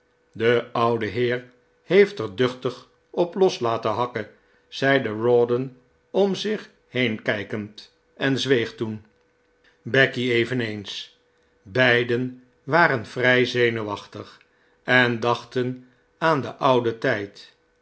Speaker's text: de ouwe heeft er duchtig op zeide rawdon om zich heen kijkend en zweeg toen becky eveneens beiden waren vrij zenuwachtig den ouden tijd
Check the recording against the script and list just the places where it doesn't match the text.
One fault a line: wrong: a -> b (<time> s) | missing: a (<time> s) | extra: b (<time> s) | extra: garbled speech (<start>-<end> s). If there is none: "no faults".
extra: heer (1.1 s)
extra: los laten hakken (3.4 s)
extra: en dachten aan (14.8 s)